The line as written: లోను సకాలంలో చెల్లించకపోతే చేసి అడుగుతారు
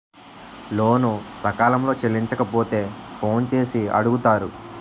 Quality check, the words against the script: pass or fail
fail